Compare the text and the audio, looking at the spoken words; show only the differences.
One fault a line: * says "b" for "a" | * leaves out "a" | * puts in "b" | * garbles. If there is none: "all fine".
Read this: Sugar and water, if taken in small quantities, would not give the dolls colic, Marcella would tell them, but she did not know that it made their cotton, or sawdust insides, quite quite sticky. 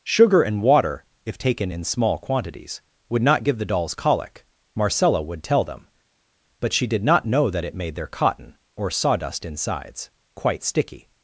* leaves out "quite"